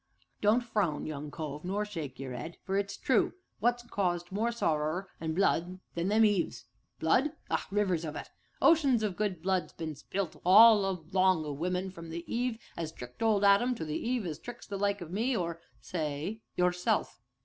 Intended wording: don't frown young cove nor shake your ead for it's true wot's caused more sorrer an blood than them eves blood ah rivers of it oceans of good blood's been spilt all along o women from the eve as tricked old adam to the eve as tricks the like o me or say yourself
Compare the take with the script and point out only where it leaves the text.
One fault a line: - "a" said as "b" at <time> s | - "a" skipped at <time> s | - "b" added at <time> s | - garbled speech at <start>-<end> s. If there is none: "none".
none